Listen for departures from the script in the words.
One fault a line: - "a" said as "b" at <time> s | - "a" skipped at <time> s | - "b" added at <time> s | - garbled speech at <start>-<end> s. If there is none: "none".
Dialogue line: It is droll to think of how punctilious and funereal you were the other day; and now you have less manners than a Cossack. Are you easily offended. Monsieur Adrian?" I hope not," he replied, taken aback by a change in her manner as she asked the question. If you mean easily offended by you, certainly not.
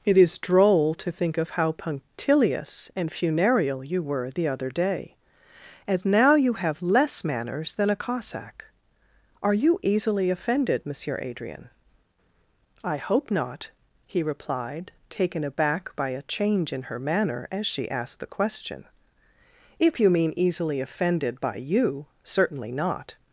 none